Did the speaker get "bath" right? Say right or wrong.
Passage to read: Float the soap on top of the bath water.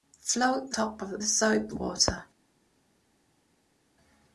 wrong